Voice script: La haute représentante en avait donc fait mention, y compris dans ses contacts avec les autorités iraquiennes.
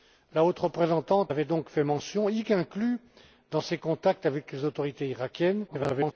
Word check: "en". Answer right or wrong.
wrong